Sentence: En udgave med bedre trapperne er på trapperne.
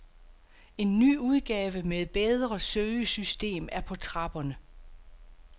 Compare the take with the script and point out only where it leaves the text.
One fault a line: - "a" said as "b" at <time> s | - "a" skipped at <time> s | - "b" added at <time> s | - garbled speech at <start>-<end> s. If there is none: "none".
- "ny" added at 1.0 s
- "trapperne" said as "søgesystem" at 2.6 s